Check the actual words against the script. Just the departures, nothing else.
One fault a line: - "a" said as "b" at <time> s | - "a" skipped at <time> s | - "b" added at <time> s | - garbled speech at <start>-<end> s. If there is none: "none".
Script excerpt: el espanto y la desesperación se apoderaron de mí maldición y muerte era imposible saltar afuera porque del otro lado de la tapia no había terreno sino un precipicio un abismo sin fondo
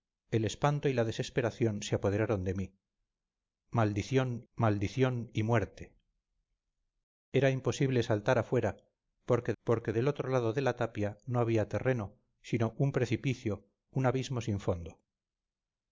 - "maldición" added at 4.5 s
- "porque" added at 9.6 s